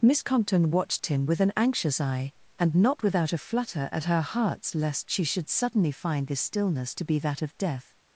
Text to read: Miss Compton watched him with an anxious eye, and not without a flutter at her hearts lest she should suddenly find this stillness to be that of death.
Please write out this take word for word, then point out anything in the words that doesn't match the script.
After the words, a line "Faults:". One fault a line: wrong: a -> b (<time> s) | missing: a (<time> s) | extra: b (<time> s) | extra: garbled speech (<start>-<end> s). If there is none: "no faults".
Miss Compton watched him with an anxious eye, and not without a flutter at her hearts lest she should suddenly find this stillness to be that of death.
Faults:
no faults